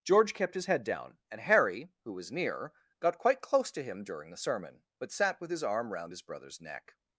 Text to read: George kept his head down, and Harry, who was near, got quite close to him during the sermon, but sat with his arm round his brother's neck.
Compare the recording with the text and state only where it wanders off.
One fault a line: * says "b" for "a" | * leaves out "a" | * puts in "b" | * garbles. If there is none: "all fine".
all fine